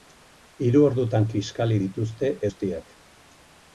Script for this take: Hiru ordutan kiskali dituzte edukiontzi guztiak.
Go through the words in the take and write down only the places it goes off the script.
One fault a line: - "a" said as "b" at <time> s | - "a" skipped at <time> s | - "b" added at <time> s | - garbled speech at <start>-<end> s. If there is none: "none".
- "edukiontzi" skipped at 2.3 s